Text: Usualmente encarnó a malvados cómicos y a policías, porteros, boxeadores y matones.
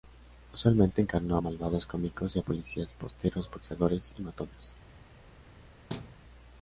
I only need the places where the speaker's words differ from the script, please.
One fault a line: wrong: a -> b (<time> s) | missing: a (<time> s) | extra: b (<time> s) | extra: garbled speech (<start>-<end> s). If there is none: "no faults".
no faults